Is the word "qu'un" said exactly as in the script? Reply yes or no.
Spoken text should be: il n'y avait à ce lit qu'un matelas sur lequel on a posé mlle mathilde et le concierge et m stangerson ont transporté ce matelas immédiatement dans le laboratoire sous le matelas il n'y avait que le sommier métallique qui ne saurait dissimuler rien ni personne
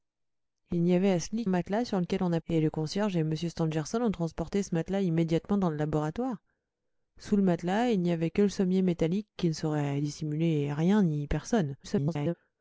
no